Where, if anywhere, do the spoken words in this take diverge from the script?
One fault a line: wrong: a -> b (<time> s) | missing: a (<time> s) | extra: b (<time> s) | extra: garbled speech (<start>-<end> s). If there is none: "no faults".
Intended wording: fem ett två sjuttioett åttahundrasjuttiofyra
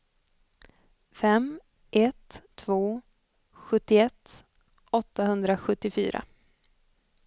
no faults